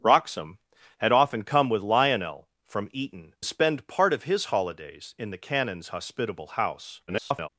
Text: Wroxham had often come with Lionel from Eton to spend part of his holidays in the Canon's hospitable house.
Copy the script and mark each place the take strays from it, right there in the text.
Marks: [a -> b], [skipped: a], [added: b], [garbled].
Wroxham had often come with Lionel from Eton [skipped: to] spend part of his holidays in the Canon's hospitable house. [garbled]